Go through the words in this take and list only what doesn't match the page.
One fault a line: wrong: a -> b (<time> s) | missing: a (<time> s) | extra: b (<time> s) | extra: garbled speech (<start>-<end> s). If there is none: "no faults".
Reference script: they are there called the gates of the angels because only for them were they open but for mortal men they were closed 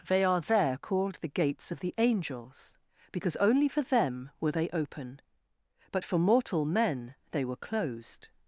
no faults